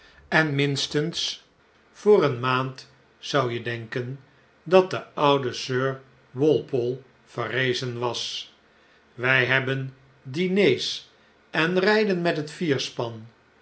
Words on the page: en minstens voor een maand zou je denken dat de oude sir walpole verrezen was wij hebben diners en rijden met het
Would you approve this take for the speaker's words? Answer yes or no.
yes